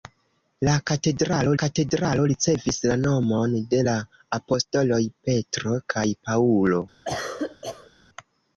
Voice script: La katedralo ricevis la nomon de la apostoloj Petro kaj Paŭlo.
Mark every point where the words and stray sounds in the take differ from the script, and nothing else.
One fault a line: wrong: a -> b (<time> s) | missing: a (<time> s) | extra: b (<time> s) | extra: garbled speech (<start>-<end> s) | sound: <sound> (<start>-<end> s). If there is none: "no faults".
extra: katedralo (1.6 s)
sound: cough (7.0-7.9 s)